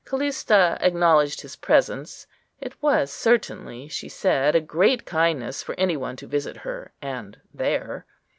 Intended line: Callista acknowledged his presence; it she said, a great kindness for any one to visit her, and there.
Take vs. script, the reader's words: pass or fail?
fail